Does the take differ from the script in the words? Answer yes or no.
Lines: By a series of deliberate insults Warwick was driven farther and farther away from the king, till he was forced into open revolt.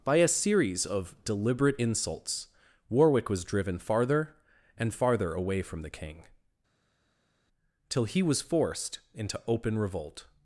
no